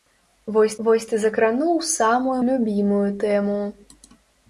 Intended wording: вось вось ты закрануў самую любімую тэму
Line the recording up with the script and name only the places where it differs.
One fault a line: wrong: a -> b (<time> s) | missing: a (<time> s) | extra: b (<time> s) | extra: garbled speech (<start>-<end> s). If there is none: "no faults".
no faults